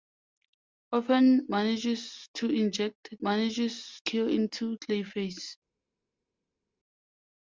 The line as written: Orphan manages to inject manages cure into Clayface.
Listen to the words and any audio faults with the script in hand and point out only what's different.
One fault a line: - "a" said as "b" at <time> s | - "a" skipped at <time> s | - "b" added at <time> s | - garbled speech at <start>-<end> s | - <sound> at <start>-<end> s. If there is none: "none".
none